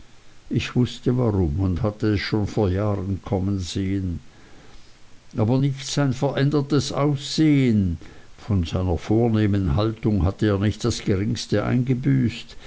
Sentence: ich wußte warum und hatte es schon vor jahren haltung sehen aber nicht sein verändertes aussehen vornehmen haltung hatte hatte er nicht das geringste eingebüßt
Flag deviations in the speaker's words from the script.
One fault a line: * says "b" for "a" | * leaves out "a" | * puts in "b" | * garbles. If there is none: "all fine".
* says "kommen" for "haltung"
* puts in "von seiner"
* leaves out "hatte"